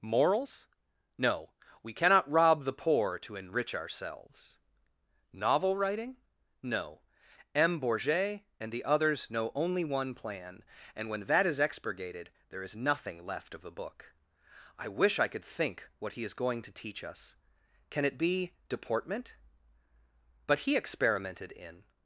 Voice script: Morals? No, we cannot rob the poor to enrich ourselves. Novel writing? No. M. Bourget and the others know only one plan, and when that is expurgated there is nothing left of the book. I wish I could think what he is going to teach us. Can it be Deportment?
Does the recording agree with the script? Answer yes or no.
no